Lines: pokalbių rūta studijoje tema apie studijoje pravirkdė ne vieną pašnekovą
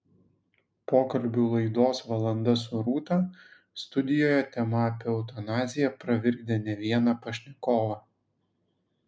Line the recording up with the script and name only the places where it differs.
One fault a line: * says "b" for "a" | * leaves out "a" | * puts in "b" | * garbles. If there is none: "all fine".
* puts in "laidos valanda su"
* says "eutanaziją" for "studijoje"